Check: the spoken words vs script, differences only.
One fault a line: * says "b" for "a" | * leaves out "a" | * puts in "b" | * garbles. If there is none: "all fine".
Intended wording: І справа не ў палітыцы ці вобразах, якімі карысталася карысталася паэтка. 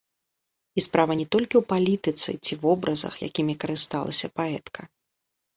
* puts in "толькі"
* leaves out "карысталася"